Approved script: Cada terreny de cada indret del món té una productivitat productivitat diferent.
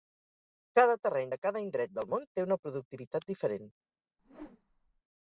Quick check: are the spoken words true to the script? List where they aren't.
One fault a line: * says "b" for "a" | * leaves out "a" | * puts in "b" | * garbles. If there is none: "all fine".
* leaves out "productivitat"